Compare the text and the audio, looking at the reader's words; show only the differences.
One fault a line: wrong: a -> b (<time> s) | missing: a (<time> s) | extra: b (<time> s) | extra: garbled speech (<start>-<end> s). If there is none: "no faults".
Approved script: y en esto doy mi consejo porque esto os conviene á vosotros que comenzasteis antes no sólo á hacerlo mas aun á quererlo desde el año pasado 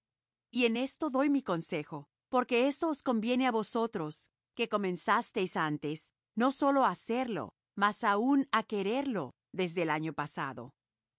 no faults